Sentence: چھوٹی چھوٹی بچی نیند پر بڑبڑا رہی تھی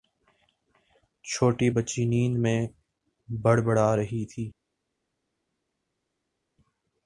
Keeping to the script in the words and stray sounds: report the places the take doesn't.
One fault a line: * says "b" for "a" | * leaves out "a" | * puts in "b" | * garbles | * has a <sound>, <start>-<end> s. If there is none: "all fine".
* leaves out "چھوٹی"
* says "میں" for "پر"